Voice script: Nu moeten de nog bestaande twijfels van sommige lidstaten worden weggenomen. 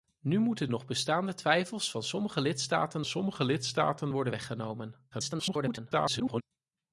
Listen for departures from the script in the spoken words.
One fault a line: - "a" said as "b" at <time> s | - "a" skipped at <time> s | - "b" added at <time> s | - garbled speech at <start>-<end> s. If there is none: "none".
- "de" skipped at 0.7 s
- "sommige lidstaten" added at 3.0 s
- garbled speech at 5.1-6.4 s